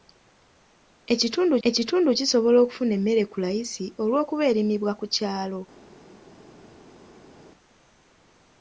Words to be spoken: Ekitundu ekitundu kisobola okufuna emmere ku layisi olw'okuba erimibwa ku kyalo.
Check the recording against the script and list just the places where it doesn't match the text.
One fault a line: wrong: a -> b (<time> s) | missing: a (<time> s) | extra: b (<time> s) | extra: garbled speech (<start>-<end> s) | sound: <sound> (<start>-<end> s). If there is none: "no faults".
no faults